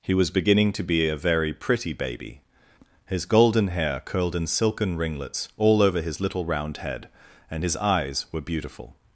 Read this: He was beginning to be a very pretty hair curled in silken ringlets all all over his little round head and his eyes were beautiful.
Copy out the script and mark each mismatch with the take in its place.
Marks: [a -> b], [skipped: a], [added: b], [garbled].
He was beginning to be a very pretty [added: baby his golden] hair curled in silken ringlets all [skipped: all] over his little round head and his eyes were beautiful.